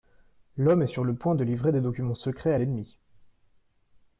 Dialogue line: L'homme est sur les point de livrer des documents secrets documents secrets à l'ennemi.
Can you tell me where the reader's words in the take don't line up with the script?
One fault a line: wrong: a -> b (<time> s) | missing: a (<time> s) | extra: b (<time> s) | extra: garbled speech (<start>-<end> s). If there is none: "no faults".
wrong: les -> le (1.0 s)
missing: documents secrets (2.5 s)